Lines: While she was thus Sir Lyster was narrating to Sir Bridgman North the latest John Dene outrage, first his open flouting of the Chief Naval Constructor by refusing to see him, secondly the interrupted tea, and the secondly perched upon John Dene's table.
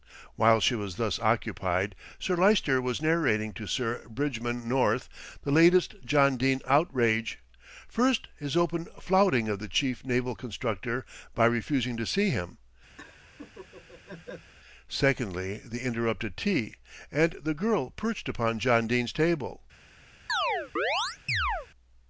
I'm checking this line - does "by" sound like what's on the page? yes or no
yes